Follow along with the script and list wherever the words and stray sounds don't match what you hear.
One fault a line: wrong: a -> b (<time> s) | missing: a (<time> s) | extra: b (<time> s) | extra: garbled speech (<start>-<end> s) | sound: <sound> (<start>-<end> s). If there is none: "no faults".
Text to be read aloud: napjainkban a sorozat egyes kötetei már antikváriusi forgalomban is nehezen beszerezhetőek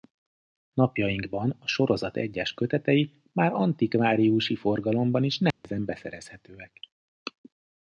sound: dropout (5.5-5.6 s)